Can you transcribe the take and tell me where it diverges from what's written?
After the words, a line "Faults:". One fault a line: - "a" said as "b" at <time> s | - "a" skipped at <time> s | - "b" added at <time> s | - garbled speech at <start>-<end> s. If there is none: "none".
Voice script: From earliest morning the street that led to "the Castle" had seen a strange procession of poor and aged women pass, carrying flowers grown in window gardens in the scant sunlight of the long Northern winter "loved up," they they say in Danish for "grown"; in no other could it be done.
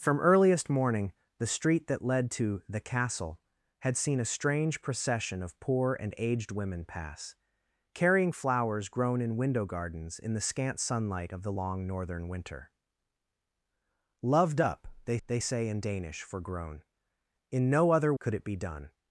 From earliest morning the street that led to "the Castle" had seen a strange procession of poor and aged women pass, carrying flowers grown in window gardens in the scant sunlight of the long Northern winter "loved up," they they say in Danish for "grown"; in no other could it be done.
Faults:
none